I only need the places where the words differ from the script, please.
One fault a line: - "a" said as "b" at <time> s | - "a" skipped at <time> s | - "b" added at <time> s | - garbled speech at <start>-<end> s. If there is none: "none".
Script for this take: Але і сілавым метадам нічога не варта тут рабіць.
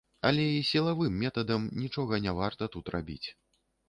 none